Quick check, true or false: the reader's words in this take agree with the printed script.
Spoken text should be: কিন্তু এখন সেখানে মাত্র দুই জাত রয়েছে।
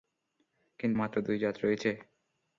false